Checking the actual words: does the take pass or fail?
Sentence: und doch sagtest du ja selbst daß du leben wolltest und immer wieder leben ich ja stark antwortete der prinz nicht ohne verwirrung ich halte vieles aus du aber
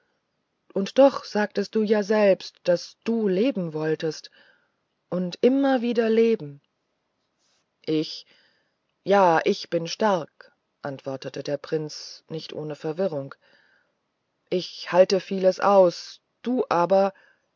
fail